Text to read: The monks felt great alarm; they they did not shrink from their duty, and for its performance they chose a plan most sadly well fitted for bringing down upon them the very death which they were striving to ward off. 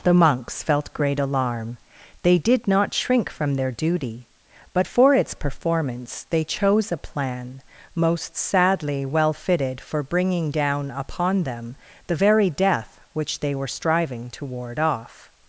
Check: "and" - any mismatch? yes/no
yes